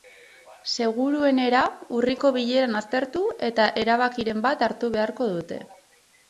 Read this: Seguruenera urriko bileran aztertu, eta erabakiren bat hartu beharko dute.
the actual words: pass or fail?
pass